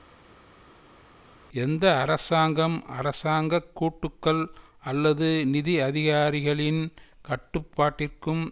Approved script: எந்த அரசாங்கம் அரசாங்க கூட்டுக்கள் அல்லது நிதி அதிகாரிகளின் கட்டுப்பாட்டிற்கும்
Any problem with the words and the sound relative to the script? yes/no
no